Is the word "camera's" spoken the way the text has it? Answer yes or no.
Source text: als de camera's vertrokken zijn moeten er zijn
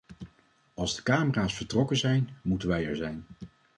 yes